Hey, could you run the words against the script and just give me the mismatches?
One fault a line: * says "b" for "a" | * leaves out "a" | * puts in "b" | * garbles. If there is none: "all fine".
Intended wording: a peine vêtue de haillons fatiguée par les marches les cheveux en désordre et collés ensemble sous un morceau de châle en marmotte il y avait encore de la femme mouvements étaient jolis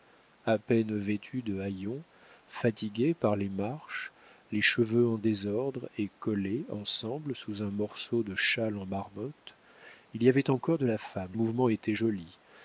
all fine